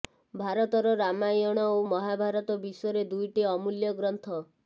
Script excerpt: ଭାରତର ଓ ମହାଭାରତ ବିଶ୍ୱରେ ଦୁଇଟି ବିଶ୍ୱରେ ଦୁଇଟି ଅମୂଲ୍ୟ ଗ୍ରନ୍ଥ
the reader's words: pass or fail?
fail